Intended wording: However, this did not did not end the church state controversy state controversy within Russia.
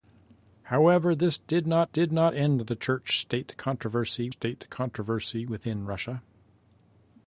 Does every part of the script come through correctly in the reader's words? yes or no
yes